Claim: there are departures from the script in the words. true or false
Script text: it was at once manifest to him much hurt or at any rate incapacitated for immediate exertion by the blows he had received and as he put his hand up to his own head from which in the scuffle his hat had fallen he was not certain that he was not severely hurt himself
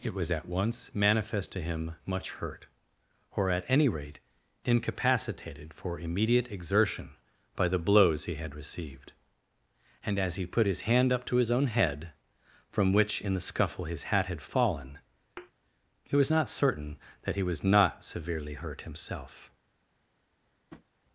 false